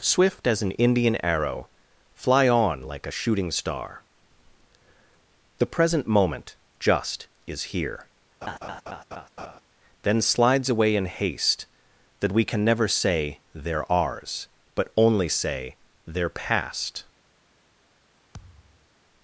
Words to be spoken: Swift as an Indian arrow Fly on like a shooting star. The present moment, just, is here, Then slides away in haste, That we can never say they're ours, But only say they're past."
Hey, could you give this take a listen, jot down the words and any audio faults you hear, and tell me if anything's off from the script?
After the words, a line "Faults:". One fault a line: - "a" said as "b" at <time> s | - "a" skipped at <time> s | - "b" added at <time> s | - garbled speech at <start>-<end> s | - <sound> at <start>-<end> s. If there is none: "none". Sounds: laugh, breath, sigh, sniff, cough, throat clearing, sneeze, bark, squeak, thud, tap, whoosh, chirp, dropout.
Swift as an Indian arrow Fly on like a shooting star. The present moment, just, is here, Then slides away in haste, That we can never say they're ours, But only say they're past."
Faults:
- laugh at 8.4-9.6 s
- thud at 18.3-18.9 s